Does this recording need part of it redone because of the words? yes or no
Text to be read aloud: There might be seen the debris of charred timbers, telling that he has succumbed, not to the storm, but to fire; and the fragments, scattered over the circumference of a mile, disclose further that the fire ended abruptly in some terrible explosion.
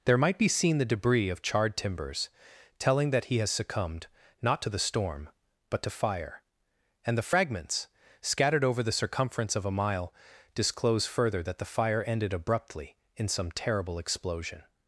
no